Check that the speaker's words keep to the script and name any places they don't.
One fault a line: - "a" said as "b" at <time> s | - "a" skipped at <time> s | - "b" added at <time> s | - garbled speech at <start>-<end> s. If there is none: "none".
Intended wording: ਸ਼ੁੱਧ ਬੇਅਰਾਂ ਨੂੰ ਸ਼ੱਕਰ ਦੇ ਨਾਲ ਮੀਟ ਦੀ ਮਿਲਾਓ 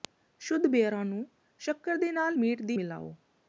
none